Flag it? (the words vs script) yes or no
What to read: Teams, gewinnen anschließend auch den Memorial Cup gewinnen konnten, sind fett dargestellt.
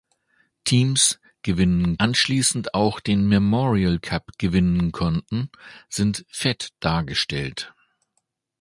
no